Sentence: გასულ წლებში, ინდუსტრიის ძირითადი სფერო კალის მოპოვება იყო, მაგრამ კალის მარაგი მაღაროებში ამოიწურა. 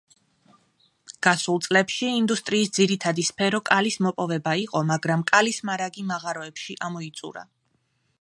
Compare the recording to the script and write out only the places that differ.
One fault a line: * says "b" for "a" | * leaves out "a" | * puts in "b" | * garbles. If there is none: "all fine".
all fine